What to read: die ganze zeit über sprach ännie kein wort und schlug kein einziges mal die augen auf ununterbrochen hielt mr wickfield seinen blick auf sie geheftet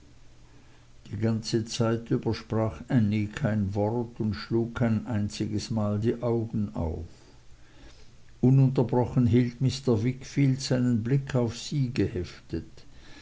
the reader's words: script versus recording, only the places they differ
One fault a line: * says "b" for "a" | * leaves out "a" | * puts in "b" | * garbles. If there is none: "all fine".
all fine